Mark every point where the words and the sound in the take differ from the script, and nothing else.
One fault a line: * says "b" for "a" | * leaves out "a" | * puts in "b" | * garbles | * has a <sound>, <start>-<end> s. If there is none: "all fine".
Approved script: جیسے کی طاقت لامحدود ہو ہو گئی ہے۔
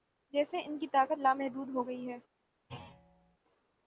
* puts in "ان"
* leaves out "ہو"
* has a thud, 2.7-3.4 s